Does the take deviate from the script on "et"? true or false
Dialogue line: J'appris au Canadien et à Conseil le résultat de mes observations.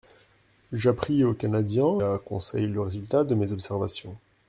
true